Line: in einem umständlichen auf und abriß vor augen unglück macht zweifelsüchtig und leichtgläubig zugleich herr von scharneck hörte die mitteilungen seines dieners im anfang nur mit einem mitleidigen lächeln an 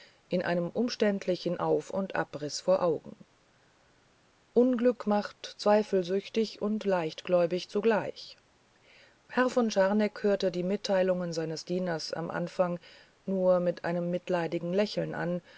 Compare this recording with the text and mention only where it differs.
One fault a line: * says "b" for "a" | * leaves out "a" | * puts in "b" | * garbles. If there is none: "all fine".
all fine